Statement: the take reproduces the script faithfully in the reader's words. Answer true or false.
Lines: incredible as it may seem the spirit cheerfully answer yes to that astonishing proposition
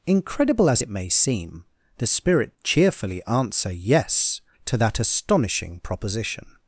true